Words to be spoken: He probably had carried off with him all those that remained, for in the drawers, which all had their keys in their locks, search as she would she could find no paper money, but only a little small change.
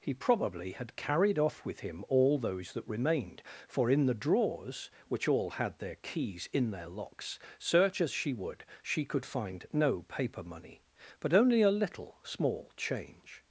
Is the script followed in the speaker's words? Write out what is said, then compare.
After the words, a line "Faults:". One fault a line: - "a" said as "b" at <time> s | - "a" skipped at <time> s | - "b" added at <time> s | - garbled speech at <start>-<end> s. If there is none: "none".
He probably had carried off with him all those that remained, for in the drawers, which all had their keys in their locks, search as she would she could find no paper money, but only a little small change.
Faults:
none